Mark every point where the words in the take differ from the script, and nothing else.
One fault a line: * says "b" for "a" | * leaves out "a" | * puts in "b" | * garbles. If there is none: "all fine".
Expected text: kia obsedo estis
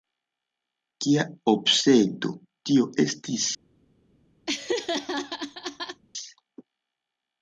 * puts in "tio"